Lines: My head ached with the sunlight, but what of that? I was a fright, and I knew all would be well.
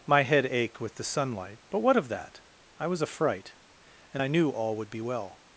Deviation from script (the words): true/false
false